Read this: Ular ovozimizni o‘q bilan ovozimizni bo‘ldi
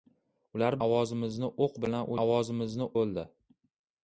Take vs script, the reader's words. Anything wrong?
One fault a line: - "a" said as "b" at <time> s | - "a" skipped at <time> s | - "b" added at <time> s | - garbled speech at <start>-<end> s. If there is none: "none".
none